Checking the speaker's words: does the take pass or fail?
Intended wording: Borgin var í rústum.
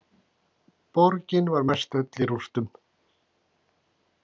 fail